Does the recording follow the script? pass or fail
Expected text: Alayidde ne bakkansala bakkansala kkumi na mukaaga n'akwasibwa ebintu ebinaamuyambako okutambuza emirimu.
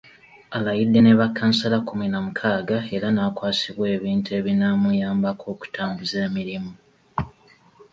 fail